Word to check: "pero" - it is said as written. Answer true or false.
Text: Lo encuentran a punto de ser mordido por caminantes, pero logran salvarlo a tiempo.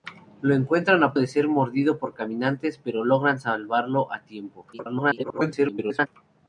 true